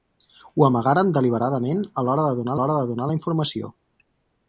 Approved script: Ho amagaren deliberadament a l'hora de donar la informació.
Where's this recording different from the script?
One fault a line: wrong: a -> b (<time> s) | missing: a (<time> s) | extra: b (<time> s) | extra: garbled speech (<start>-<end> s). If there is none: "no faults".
extra: l'hora de donar (2.6 s)